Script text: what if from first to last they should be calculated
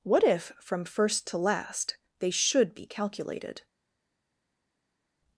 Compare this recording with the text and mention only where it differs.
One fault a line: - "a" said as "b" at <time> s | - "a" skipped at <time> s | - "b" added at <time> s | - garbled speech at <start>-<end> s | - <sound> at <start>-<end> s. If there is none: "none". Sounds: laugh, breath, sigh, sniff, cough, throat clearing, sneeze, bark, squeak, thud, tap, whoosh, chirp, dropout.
none